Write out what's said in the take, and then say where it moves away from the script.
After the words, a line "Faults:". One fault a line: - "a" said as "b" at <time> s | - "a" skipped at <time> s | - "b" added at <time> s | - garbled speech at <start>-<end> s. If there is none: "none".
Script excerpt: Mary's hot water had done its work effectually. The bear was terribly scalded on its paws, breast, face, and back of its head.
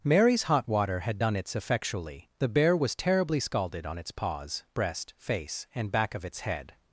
Mary's hot water had done its effectually. The bear was terribly scalded on its paws, breast, face, and back of its head.
Faults:
- "work" skipped at 1.6 s